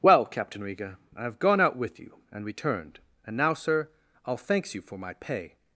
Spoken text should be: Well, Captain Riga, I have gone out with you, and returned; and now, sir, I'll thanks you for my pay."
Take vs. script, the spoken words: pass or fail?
pass